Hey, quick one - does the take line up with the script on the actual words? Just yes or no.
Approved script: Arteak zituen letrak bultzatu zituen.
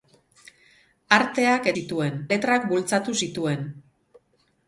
yes